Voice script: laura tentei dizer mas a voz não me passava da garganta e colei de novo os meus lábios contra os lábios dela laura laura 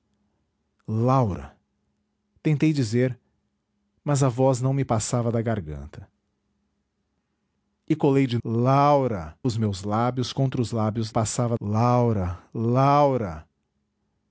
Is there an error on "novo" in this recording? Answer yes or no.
yes